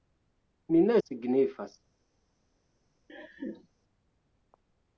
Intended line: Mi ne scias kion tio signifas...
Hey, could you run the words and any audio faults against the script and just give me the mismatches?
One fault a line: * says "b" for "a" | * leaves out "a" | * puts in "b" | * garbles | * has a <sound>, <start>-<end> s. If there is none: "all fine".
* leaves out "scias kion tio"
* has a laugh, 3.1-3.7 s